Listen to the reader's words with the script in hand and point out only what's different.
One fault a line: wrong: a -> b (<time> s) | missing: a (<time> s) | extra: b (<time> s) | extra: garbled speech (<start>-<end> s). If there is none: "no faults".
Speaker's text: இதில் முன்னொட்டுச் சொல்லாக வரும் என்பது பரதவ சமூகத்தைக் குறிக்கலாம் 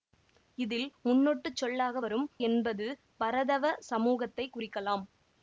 no faults